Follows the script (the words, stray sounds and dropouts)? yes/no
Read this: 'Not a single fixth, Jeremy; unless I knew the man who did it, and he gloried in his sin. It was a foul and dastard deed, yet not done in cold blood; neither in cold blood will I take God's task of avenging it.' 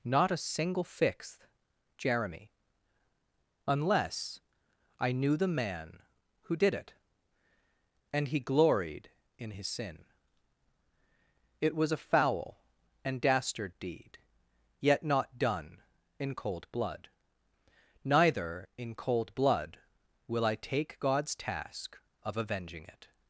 yes